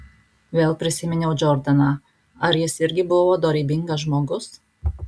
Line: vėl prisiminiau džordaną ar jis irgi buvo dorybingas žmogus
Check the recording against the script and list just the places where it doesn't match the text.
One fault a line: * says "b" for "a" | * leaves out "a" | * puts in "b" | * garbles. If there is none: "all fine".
all fine